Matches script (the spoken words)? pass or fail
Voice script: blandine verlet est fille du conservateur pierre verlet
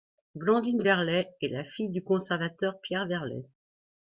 fail